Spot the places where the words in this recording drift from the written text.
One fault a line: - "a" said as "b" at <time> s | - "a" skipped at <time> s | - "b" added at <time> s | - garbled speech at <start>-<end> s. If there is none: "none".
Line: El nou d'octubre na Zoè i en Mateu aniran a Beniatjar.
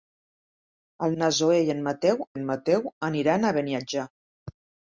- "nou d'octubre" skipped at 1.1 s
- "en Mateu" added at 2.3 s